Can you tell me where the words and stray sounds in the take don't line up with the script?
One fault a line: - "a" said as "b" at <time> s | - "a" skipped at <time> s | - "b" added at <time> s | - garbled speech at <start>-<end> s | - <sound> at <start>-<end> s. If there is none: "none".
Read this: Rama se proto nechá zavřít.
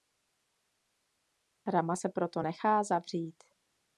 none